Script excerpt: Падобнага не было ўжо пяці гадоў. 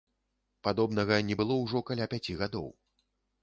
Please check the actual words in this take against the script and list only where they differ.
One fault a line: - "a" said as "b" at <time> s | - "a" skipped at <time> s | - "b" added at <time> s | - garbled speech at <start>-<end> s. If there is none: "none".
- "каля" added at 1.9 s